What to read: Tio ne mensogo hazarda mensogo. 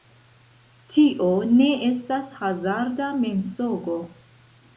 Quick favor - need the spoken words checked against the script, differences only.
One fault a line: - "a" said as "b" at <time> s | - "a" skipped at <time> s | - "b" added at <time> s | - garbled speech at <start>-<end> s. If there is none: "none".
- "mensogo" said as "estas" at 1.9 s